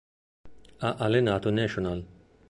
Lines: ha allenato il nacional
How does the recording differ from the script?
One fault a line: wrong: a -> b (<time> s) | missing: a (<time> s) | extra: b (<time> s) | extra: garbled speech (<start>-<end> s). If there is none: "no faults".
no faults